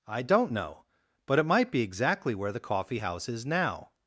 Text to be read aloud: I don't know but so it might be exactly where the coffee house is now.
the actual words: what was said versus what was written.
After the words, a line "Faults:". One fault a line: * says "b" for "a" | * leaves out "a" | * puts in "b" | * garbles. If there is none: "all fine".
I don't know but it might be exactly where the coffee house is now.
Faults:
* leaves out "so"